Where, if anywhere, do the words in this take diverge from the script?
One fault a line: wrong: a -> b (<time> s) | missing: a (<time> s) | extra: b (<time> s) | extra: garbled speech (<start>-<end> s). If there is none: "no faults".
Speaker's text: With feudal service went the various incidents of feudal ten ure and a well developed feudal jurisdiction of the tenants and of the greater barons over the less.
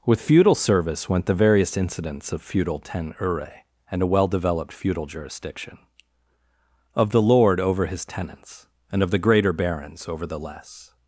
extra: lord over his (7.2 s)